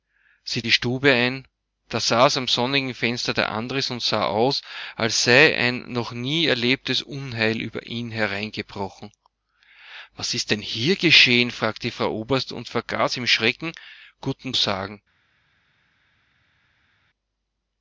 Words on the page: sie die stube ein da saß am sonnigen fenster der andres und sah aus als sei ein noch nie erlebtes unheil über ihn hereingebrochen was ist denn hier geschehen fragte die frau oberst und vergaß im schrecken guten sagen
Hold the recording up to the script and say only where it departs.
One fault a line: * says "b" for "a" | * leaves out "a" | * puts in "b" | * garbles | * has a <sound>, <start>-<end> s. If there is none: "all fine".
all fine